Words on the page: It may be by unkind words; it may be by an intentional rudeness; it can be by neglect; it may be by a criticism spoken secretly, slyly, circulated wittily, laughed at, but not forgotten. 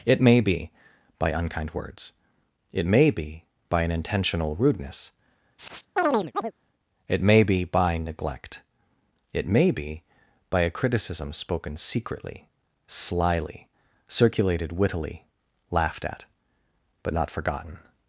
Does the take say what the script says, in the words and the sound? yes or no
no